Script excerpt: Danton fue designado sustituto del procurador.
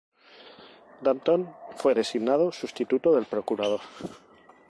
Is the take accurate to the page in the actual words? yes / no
yes